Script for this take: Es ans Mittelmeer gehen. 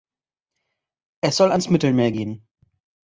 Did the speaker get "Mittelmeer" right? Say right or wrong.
right